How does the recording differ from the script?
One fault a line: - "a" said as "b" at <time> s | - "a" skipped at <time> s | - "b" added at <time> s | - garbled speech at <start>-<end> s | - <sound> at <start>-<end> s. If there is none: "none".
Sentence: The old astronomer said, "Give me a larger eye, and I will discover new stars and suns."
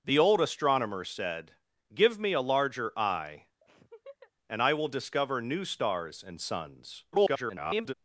- laugh at 3.6-4.3 s
- garbled speech at 7.1-7.9 s